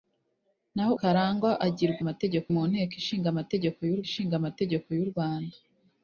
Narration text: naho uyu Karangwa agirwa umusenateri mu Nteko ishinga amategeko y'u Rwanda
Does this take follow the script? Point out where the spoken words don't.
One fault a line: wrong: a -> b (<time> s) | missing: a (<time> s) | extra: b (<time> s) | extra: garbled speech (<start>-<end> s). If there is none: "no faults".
missing: uyu (0.9 s)
wrong: umusenateri -> amategeko (2.0 s)
extra: ishinga amategeko y'u (4.1 s)